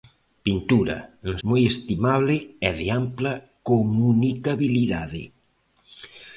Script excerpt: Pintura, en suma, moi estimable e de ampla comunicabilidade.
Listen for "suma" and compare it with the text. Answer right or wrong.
wrong